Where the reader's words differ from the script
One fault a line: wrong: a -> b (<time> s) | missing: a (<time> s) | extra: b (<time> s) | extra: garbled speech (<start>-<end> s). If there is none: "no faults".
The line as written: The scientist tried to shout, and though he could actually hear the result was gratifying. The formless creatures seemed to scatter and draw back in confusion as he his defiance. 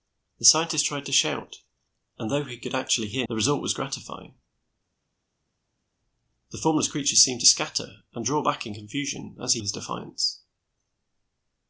no faults